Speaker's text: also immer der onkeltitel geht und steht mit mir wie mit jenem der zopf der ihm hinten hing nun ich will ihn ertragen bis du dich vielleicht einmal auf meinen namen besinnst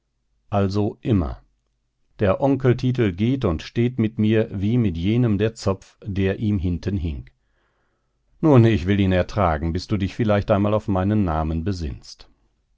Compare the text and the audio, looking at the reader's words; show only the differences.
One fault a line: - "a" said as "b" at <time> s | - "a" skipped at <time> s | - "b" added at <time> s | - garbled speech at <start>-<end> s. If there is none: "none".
none